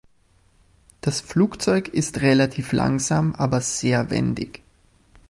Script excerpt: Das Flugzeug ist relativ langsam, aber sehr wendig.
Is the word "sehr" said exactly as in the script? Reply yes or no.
yes